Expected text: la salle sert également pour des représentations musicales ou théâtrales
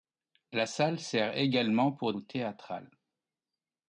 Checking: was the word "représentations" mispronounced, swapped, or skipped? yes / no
yes